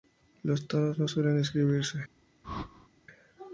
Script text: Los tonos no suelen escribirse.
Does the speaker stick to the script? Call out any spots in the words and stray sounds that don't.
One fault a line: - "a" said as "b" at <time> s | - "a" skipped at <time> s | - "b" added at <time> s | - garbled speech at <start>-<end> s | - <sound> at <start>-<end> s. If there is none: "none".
- whoosh at 2.4-2.9 s